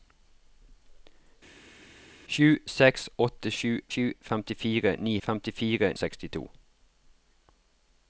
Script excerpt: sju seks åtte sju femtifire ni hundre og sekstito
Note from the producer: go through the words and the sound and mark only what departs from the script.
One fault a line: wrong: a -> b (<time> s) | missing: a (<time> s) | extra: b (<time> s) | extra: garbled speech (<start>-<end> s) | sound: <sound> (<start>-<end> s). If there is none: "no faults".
extra: sju (3.9 s)
wrong: hundre -> femtifire (5.3 s)